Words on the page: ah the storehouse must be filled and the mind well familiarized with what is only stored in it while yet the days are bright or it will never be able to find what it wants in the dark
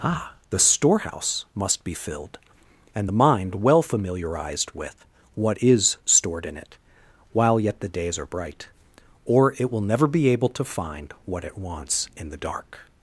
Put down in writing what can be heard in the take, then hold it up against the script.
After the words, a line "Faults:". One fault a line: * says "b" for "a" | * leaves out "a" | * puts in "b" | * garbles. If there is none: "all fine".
ah the storehouse must be filled and the mind well familiarized with what is stored in it while yet the days are bright or it will never be able to find what it wants in the dark
Faults:
* leaves out "only"